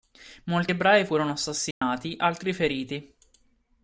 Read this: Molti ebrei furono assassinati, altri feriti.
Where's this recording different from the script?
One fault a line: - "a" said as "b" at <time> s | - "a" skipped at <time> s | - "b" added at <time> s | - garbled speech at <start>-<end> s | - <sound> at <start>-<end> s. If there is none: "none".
- dropout at 1.7-1.8 s